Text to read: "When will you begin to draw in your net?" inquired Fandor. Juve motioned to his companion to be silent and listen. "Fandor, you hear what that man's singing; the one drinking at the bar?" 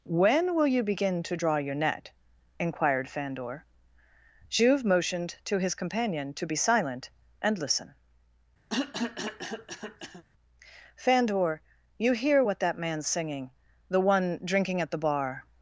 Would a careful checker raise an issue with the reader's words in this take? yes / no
yes